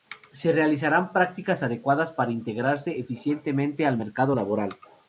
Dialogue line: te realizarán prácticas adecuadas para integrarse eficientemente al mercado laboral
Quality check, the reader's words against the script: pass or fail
fail